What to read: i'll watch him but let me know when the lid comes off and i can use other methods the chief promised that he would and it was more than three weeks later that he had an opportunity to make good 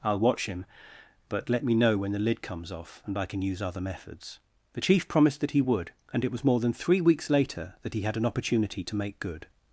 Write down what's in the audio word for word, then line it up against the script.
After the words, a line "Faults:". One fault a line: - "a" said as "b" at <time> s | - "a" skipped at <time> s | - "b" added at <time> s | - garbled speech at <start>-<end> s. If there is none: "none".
i'll watch him but let me know when the lid comes off and i can use other methods the chief promised that he would and it was more than three weeks later that he had an opportunity to make good
Faults:
none